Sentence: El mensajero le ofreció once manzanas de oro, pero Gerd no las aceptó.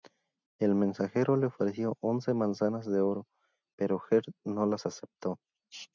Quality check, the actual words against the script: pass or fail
pass